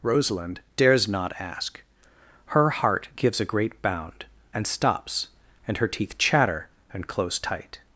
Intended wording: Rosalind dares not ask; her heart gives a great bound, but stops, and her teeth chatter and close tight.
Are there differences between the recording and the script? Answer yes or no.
yes